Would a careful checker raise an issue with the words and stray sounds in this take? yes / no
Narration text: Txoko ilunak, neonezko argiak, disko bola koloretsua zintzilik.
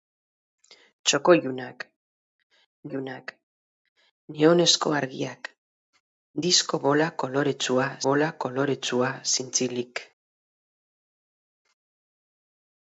yes